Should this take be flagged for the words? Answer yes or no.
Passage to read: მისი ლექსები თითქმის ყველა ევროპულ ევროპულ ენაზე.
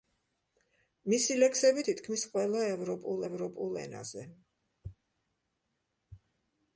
no